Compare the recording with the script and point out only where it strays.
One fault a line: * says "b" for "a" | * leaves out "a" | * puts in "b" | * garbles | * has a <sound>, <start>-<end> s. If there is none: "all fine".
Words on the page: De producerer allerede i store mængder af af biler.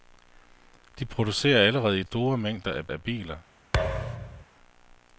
* has a thud, 3.7-4.5 s